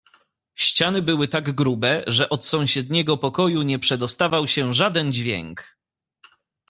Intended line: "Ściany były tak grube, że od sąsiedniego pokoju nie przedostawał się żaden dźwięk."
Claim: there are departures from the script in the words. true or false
false